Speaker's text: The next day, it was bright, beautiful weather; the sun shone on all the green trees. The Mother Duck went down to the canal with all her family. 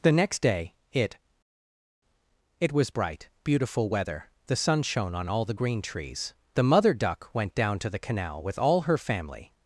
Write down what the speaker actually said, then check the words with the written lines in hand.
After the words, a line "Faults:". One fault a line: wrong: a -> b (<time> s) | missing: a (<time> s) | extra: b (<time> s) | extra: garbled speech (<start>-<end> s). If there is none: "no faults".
The next day, it it was bright, beautiful weather; the sun shone on all the green trees. The Mother Duck went down to the canal with all her family.
Faults:
extra: it (2.6 s)